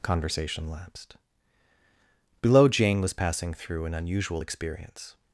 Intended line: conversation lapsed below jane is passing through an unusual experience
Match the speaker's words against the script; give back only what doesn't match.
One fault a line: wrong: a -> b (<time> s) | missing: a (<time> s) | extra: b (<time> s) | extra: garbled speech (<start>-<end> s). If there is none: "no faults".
wrong: is -> was (3.0 s)